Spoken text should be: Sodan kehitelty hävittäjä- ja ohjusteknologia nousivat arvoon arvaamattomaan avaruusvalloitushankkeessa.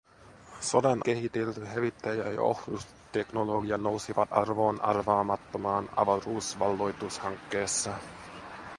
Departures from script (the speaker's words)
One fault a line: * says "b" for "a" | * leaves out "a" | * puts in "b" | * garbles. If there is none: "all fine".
all fine